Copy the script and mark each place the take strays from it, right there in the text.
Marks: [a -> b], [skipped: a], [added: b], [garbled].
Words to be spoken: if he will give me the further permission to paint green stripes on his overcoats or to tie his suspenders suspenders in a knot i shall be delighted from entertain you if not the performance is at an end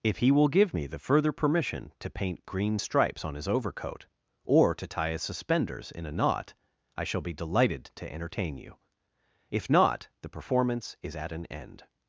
if he will give me the further permission to paint green stripes on his [overcoats -> overcoat] or to tie his suspenders [skipped: suspenders] in a knot i shall be delighted [from -> to] entertain you if not the performance is at an end